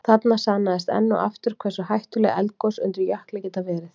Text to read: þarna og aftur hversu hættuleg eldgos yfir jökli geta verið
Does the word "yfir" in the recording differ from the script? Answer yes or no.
yes